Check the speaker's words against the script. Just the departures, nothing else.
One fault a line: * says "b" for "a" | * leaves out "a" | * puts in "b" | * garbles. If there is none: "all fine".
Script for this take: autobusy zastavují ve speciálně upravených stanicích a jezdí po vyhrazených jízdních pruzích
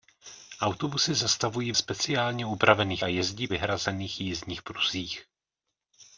* leaves out "ve"
* leaves out "stanicích"
* leaves out "po"